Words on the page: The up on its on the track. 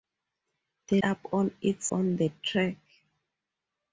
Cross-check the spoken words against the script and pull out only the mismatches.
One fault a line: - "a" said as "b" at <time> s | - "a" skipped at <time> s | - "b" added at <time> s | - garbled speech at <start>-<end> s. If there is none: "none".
none